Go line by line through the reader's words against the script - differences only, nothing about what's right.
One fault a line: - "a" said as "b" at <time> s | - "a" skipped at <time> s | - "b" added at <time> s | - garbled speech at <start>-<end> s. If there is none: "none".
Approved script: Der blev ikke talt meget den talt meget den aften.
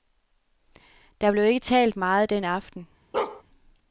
- "talt meget den" skipped at 2.4 s